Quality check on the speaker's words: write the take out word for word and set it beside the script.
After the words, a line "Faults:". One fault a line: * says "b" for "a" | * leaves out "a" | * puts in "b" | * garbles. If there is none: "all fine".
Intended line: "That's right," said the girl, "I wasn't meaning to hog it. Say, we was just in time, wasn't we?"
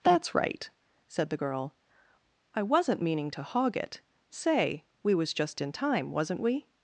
"That's right," said the girl, "I wasn't meaning to hog it. Say, we was just in time, wasn't we?"
Faults:
all fine